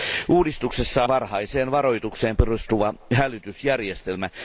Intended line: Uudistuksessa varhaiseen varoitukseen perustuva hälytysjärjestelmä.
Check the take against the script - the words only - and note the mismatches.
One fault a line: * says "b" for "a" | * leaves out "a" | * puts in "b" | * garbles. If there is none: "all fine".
all fine